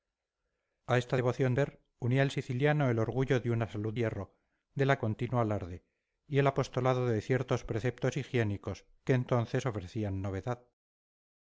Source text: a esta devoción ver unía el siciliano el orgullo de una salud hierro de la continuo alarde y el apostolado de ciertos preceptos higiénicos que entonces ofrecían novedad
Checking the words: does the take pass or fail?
pass